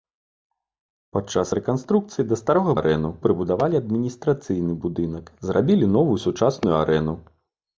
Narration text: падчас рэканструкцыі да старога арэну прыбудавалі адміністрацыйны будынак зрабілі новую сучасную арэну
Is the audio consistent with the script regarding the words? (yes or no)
yes